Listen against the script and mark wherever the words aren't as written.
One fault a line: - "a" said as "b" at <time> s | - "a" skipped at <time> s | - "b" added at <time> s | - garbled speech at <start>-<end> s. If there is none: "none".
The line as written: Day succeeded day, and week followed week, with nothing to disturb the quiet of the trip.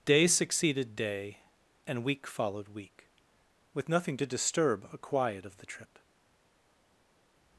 - "the" said as "a" at 4.9 s